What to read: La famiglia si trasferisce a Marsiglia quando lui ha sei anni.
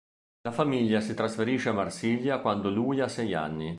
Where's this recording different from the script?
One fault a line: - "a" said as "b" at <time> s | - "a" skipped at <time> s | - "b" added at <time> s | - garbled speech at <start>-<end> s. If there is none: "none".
none